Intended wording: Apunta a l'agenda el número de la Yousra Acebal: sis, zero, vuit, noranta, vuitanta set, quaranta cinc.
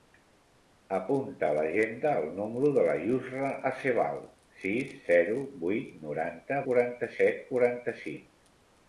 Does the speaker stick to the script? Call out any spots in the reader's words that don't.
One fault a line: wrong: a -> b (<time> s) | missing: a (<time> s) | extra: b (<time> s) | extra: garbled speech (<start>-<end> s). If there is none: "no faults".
wrong: vuitanta -> quaranta (6.7 s)